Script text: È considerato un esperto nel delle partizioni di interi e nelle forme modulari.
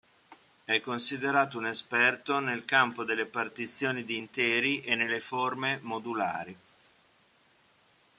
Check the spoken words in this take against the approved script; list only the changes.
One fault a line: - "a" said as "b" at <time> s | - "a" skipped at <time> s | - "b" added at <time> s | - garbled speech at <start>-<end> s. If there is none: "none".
- "campo" added at 2.6 s